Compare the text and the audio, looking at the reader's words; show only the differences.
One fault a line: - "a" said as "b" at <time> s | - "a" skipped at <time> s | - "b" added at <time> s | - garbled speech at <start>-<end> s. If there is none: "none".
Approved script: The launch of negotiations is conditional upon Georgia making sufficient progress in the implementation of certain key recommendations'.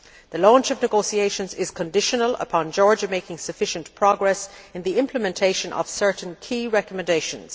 none